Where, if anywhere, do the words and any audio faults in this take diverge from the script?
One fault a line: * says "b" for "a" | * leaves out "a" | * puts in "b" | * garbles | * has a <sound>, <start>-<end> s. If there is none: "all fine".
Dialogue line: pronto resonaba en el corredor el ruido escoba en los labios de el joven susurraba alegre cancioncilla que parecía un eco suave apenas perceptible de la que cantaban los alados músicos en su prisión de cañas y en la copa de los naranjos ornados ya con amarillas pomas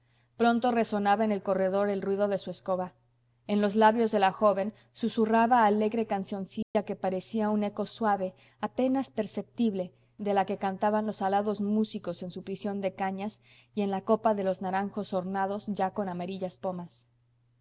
* puts in "de su"
* says "la" for "el"
* has a dropout, 6.6-6.8 s